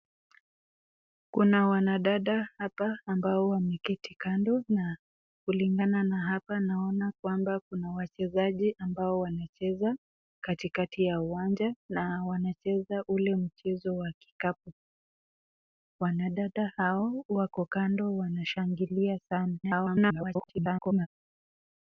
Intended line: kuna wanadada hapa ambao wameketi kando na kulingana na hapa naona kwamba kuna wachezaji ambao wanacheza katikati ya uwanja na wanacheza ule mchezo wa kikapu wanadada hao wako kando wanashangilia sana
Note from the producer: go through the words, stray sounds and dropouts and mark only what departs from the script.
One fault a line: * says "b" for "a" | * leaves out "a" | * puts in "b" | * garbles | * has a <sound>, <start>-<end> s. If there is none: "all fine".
* garbles